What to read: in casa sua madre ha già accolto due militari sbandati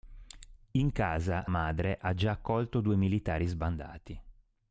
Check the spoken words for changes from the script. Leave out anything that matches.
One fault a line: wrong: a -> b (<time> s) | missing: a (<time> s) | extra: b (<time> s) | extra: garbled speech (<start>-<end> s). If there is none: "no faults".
missing: sua (1.5 s)